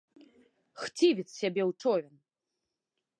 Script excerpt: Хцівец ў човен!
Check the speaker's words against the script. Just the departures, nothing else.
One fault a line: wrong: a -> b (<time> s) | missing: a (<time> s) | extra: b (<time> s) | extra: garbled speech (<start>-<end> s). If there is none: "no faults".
extra: сябе (1.4 s)